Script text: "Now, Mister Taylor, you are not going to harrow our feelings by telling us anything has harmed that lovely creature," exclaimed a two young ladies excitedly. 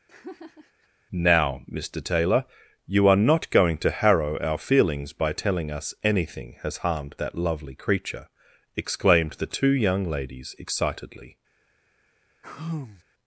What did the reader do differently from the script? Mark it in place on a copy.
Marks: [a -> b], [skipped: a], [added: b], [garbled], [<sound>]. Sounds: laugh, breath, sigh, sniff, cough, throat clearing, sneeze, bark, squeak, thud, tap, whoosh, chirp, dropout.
[laugh] "Now, Mister Taylor, you are not going to harrow our feelings by telling us anything has harmed that lovely creature," exclaimed [a -> the] two young ladies excitedly. [sigh]